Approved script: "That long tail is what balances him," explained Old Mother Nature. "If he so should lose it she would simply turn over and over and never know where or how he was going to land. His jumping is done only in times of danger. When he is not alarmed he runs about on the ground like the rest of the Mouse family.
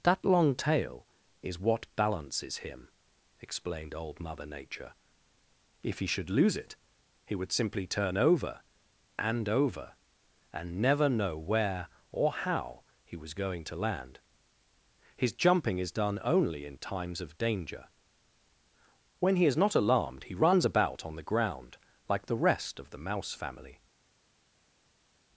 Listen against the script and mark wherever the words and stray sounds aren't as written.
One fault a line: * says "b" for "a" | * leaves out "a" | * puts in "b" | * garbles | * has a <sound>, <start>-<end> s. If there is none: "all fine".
* leaves out "so"
* says "he" for "she"